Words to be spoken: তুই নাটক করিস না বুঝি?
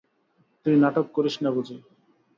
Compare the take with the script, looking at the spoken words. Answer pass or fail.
pass